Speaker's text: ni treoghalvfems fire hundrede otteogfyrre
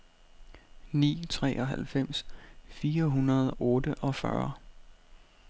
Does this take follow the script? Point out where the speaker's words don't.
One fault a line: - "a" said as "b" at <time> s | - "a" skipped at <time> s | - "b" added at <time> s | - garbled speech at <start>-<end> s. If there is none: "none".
none